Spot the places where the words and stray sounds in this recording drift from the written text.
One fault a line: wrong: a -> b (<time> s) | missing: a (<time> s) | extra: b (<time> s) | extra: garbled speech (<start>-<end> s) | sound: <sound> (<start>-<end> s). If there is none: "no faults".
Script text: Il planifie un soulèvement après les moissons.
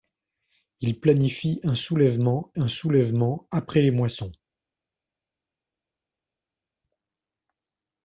extra: un soulèvement (2.5 s)